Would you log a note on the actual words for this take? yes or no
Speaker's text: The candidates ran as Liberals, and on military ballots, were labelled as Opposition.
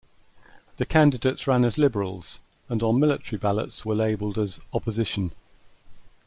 no